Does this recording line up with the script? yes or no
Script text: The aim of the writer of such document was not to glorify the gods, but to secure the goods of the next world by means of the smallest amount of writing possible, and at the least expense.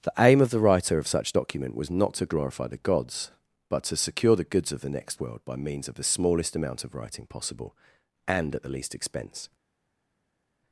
yes